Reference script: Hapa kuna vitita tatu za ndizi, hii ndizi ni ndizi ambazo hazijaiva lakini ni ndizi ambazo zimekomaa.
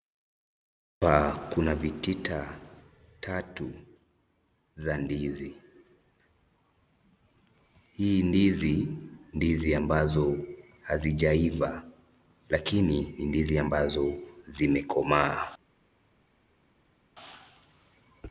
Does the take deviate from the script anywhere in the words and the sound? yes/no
yes